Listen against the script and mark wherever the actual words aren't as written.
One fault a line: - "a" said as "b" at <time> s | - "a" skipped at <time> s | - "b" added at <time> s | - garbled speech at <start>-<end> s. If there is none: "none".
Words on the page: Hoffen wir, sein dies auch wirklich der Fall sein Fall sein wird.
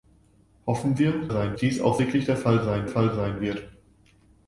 none